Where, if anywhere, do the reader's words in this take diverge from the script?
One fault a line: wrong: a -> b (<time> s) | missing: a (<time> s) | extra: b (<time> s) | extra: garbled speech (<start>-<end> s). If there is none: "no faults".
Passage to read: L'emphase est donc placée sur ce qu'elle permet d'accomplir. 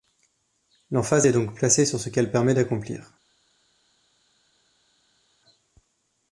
no faults